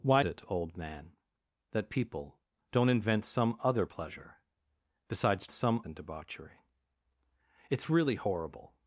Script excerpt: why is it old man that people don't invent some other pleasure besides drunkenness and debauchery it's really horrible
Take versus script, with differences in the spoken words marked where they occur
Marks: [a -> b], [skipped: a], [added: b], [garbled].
why [skipped: is] it old man that people don't invent some other pleasure besides [drunkenness -> some] and debauchery it's really horrible